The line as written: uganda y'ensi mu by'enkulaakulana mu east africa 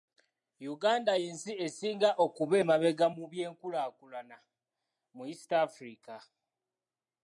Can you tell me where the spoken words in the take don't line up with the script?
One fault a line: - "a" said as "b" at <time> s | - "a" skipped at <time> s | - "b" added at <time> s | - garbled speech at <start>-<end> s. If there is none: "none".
- "esinga okuba emabega" added at 1.6 s